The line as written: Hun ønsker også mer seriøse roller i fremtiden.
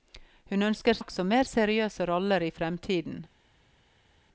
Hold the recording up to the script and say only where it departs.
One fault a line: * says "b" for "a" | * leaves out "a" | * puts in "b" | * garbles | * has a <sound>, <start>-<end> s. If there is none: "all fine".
all fine